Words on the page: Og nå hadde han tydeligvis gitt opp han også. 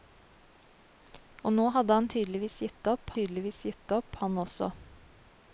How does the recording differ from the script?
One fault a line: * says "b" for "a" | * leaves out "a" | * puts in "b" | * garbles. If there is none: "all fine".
* puts in "tydeligvis gitt opp"